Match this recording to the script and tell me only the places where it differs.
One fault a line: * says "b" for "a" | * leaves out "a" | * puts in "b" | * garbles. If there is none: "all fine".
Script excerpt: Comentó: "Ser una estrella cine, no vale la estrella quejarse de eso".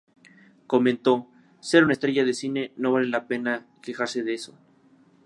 * puts in "de"
* says "pena" for "estrella"